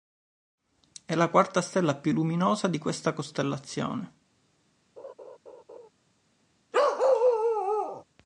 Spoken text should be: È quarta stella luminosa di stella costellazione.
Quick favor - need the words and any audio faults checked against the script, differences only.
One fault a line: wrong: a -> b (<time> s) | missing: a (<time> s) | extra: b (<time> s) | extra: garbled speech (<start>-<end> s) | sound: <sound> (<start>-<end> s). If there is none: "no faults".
extra: la (1.1 s)
extra: più (1.9 s)
wrong: stella -> questa (2.8 s)
sound: laugh (5.0-5.9 s)
sound: bark (6.7-8.0 s)